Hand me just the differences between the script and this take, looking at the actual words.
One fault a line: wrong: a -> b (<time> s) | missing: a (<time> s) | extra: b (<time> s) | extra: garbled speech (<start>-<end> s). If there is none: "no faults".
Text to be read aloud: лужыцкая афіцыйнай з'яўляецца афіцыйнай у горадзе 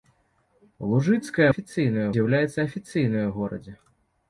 no faults